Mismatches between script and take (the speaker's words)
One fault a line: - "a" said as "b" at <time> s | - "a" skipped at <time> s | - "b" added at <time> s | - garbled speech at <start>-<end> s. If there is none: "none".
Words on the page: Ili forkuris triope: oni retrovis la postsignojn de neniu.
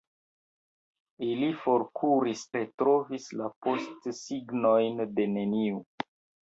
- "triope oni" skipped at 2.4 s